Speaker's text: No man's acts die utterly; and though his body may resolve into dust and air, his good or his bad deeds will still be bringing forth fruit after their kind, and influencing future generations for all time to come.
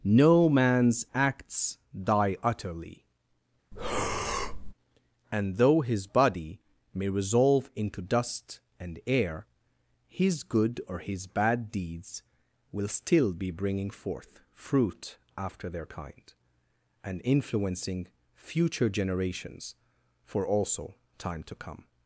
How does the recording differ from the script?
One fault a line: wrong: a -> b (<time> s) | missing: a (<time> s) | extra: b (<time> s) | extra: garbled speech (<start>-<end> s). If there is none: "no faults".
wrong: all -> also (20.5 s)